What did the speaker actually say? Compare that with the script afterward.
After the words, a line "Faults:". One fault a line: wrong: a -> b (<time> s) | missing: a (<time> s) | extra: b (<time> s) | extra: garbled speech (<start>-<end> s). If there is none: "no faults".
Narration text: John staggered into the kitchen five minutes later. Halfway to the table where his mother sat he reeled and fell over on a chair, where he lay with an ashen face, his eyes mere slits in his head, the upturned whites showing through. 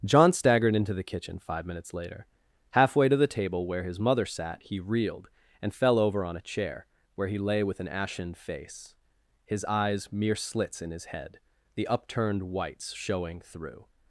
John staggered into the kitchen five minutes later. Halfway to the table where his mother sat he reeled and fell over on a chair, where he lay with an ashen face, his eyes mere slits in his head, the upturned whites showing through.
Faults:
no faults